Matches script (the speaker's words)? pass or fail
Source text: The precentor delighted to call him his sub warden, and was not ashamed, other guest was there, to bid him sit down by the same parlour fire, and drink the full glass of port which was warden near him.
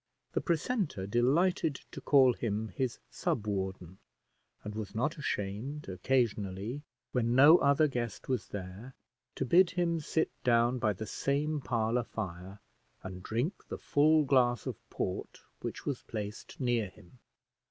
fail